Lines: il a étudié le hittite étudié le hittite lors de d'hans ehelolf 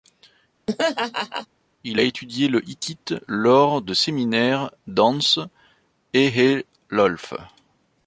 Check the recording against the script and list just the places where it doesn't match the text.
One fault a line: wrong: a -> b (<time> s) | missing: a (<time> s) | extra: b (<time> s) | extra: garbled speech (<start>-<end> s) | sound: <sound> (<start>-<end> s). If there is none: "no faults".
sound: laugh (0.7-1.5 s)
missing: étudié le hittite (3.1 s)
extra: séminaires (3.9 s)